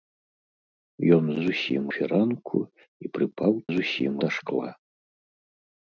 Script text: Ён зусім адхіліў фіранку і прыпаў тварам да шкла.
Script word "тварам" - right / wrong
wrong